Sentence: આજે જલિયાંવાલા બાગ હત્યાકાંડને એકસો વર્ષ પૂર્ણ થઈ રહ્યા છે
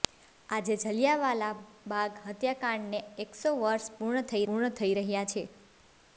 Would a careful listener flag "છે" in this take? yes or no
no